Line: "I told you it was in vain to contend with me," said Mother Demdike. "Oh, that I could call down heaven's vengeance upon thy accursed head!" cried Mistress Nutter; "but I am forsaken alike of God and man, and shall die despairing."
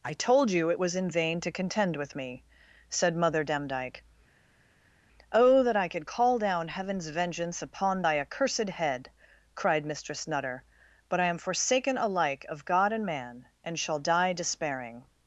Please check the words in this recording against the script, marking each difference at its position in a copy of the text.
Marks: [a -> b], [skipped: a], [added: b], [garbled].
"I told you it was in vain to contend with me," said Mother Demdike. "Oh, that I could call down heaven's vengeance upon thy accursed head!" cried Mistress Nutter; "but I am forsaken alike of God and man, and shall die despairing."